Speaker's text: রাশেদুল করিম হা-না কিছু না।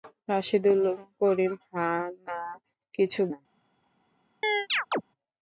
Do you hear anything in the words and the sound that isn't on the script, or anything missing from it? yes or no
yes